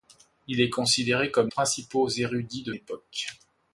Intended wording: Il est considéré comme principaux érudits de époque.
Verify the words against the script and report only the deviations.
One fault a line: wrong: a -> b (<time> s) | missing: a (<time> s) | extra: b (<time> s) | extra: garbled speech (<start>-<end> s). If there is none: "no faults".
no faults